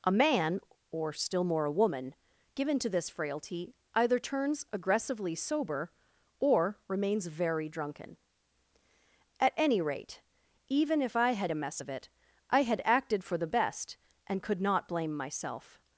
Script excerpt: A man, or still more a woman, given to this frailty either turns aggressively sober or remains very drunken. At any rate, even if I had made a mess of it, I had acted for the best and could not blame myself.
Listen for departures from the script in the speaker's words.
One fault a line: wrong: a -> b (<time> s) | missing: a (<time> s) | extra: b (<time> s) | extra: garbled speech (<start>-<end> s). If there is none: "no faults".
missing: made (11.5 s)